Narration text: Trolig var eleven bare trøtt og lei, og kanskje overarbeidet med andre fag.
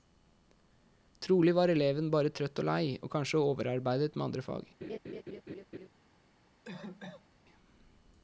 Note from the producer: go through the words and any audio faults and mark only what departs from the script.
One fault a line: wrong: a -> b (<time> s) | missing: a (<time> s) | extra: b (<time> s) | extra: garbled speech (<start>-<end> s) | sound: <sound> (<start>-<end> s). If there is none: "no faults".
sound: laugh (4.8-5.9 s)
sound: cough (6.6-7.4 s)